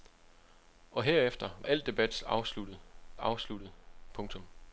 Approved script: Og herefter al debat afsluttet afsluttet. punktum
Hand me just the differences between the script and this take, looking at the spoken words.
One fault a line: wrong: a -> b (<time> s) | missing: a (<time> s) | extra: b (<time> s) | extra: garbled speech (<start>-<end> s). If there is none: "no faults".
no faults